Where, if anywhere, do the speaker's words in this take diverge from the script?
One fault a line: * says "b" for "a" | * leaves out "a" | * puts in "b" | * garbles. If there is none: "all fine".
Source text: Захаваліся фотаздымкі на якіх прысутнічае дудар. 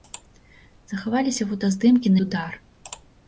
* leaves out "на якіх прысутнічае"